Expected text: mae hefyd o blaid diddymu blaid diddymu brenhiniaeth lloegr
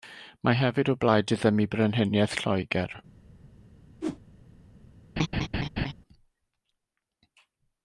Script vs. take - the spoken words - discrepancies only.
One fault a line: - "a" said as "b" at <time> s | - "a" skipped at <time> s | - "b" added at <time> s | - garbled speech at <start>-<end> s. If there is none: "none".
- "blaid diddymu" skipped at 1.6 s